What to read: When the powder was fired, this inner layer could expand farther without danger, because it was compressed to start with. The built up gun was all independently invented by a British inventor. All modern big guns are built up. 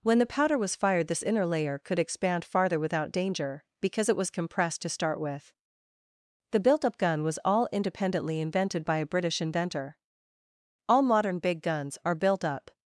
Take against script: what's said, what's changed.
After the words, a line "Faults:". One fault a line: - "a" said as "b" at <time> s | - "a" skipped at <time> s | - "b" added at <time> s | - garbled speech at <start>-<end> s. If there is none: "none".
When the powder was fired, this inner layer could expand farther without danger, because it was compressed to start with. The built up gun was all independently invented by a British inventor. All modern big guns are built up.
Faults:
none